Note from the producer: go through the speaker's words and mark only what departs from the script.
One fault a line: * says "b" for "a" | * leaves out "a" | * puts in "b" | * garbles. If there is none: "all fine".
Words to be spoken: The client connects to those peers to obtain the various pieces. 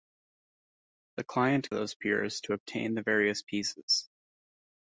* leaves out "connects to"